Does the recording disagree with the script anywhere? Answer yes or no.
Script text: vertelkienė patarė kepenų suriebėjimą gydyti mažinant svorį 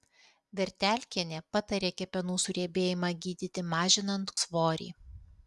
no